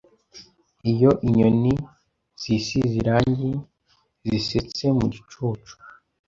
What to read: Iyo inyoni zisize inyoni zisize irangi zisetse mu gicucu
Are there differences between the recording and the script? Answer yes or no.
yes